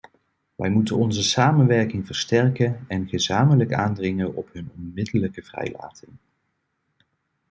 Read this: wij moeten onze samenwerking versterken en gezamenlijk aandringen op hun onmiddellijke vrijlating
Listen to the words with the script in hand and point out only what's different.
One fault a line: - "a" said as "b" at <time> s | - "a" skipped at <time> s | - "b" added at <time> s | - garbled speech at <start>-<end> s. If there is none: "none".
none